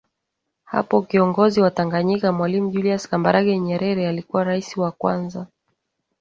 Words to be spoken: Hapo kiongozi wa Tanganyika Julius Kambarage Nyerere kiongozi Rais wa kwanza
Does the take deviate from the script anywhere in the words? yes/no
yes